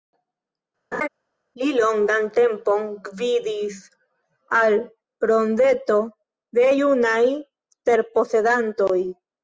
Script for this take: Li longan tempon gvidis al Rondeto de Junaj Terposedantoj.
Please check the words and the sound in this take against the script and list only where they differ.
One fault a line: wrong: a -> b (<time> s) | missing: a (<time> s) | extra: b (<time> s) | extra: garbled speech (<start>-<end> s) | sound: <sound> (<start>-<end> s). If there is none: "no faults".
sound: laugh (0.9-1.1 s)